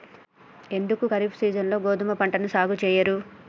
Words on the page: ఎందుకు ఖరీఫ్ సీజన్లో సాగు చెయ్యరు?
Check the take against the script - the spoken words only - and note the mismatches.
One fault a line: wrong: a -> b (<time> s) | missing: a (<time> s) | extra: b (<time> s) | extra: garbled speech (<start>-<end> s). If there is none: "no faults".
extra: గోధుమ పంటను (1.8 s)